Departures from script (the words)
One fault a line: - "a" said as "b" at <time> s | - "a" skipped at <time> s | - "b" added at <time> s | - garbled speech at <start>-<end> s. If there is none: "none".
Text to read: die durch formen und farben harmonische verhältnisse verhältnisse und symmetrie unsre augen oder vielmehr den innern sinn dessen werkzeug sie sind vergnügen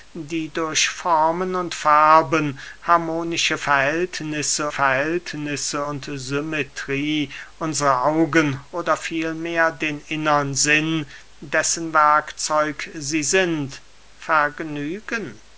none